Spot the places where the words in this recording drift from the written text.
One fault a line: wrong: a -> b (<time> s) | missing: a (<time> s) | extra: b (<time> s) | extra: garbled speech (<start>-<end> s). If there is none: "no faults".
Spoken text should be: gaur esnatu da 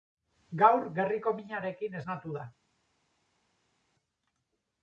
extra: gerriko minarekin (0.9 s)